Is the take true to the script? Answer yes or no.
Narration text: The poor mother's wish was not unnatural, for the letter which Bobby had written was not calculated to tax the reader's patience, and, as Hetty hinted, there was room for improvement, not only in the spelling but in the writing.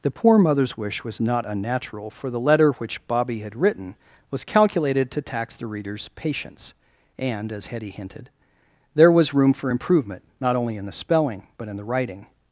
no